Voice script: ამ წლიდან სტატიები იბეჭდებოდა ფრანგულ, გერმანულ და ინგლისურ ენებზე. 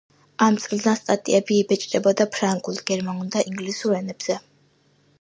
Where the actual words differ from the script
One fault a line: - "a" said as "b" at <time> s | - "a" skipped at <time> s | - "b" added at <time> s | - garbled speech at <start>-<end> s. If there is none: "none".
none